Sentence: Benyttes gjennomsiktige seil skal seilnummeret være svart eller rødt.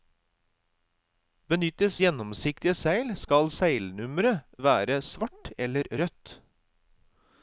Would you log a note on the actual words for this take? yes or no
no